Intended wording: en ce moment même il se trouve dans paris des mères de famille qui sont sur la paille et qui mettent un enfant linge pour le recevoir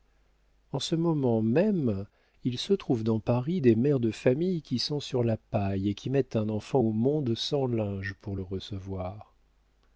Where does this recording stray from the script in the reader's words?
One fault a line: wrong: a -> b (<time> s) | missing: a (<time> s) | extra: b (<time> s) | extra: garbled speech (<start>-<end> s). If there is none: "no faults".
extra: au monde sans (6.8 s)